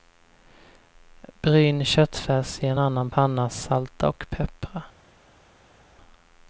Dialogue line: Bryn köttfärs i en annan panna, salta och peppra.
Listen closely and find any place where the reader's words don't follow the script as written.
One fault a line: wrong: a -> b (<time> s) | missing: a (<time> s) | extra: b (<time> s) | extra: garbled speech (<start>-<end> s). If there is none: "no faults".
no faults